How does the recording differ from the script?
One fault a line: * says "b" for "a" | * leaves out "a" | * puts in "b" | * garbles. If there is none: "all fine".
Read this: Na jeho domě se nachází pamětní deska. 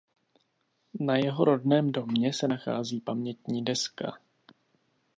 * puts in "rodném"